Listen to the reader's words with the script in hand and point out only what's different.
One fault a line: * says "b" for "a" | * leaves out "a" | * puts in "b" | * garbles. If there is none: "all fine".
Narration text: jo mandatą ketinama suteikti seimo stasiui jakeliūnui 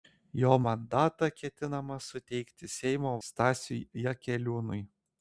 all fine